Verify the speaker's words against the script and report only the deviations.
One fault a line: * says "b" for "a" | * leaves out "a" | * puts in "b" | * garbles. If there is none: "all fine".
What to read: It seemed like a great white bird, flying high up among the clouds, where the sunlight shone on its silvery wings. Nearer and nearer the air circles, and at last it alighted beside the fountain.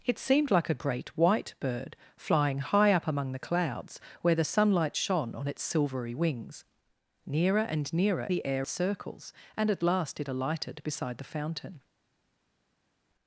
all fine